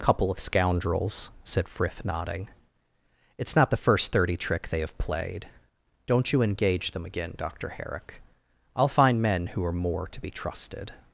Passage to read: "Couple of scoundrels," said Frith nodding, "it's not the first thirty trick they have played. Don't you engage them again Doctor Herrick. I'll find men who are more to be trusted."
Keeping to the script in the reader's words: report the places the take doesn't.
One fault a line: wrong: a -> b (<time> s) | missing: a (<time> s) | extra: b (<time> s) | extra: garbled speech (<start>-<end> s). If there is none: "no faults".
no faults